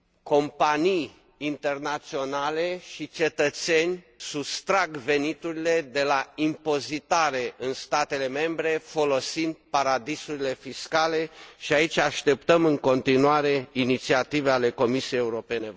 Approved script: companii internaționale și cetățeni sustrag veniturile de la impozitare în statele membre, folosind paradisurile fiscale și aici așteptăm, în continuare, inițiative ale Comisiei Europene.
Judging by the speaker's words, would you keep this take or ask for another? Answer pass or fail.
pass